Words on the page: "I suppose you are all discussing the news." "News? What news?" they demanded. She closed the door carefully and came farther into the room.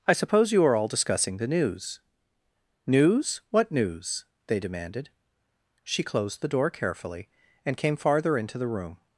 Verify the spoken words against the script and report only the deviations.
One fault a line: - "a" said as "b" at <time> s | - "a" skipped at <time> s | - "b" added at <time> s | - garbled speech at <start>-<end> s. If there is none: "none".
none